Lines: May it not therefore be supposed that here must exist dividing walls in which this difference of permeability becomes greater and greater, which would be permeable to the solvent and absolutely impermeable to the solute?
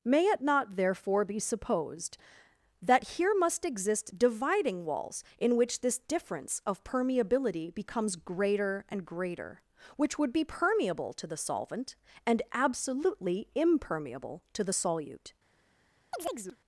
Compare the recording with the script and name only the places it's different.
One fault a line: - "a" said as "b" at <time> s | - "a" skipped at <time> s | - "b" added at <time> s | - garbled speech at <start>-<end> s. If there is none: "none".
none